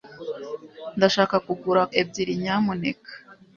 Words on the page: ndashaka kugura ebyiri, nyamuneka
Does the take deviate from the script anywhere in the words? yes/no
no